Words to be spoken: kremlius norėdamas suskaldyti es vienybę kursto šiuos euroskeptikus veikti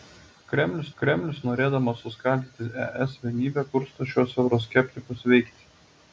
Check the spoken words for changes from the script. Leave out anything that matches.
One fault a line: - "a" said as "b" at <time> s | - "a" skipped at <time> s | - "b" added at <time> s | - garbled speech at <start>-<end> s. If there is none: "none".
- "kremlius" added at 1.0 s